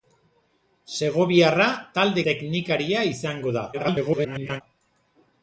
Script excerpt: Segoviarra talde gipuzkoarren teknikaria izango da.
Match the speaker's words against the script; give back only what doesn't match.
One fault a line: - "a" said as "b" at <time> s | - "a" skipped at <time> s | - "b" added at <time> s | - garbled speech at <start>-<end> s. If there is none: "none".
- "gipuzkoarren" skipped at 2.2 s
- garbled speech at 3.7-4.6 s